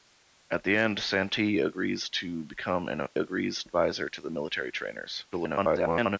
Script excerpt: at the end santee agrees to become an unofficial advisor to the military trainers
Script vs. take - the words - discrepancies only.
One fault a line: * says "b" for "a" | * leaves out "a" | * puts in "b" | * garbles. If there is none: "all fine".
* says "agrees" for "unofficial"
* garbles